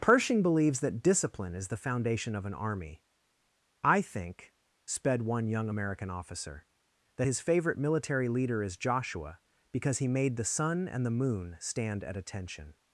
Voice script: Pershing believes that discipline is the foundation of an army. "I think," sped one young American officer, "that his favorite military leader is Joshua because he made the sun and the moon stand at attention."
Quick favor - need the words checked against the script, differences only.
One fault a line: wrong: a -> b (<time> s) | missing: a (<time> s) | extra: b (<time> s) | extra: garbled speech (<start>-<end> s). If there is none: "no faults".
no faults